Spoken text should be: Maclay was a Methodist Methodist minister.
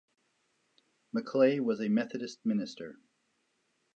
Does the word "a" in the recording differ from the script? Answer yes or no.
no